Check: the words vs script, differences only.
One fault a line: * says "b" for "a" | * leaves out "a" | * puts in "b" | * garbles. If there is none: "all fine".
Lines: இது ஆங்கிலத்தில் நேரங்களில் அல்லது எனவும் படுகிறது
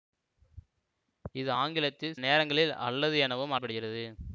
all fine